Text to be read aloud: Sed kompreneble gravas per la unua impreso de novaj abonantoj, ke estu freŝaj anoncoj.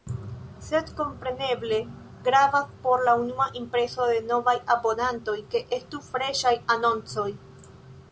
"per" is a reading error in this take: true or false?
true